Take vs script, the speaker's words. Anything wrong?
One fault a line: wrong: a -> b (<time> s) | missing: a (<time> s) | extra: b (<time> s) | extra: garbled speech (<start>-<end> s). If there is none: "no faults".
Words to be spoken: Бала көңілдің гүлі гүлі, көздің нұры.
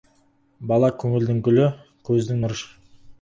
missing: гүлі (1.7 s)